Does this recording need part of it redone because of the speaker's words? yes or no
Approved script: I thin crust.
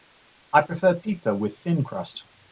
yes